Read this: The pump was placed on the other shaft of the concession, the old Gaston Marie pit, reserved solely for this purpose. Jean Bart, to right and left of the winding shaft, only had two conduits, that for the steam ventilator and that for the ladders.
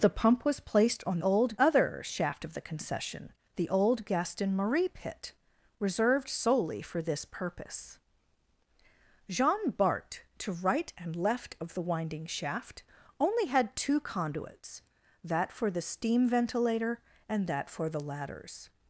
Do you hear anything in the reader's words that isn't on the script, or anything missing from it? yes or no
yes